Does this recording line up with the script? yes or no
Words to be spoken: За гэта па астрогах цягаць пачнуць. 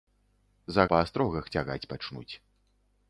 no